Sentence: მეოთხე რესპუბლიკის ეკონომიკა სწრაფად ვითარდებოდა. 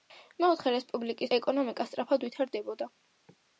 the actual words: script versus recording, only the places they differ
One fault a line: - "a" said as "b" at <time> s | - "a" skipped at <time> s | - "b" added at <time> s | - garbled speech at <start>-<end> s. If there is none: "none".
none